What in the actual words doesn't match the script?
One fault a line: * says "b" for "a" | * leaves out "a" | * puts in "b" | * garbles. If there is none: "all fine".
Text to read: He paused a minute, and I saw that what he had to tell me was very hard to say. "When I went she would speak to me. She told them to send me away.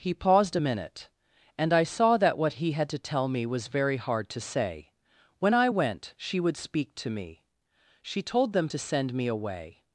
all fine